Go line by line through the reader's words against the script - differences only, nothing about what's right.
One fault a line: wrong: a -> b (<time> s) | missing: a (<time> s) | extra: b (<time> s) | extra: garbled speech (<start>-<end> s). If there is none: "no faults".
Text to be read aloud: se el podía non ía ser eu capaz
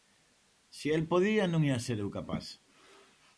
no faults